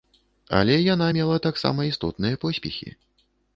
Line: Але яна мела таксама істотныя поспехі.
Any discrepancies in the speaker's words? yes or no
no